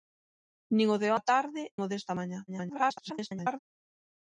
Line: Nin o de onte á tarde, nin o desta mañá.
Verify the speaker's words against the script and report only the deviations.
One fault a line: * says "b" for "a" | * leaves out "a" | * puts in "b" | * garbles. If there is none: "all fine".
* leaves out "onte"
* leaves out "nin"
* garbles